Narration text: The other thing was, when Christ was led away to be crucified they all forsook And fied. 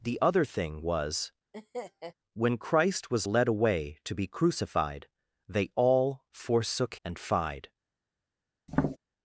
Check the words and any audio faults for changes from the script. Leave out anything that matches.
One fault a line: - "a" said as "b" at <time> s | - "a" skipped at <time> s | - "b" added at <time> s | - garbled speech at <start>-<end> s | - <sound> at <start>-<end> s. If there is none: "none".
- laugh at 1.5-2.1 s
- tap at 8.7-9.0 s